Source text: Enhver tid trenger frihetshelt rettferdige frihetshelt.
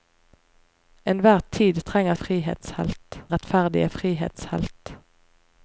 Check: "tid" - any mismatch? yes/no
no